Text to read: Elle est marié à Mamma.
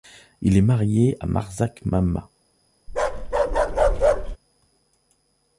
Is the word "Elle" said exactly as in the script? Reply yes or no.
no